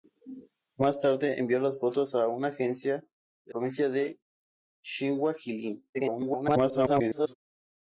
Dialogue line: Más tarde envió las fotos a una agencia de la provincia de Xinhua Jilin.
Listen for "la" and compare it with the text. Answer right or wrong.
wrong